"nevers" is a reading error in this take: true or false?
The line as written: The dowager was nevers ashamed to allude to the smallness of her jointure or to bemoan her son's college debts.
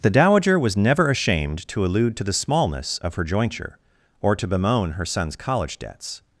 true